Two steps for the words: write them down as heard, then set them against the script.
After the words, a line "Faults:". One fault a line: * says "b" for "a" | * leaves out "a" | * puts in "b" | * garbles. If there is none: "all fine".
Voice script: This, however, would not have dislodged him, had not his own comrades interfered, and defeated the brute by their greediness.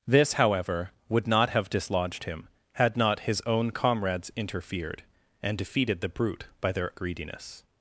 This, however, would not have dislodged him, had not his own comrades interfered, and defeated the brute by their greediness.
Faults:
all fine